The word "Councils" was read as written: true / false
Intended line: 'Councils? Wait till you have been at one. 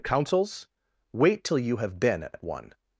true